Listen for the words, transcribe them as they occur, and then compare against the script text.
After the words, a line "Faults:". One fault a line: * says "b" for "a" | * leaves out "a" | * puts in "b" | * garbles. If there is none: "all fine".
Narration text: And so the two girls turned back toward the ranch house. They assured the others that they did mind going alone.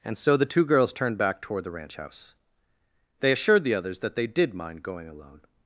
And so the two girls turned back toward the ranch house. They assured the others that they did mind going alone.
Faults:
all fine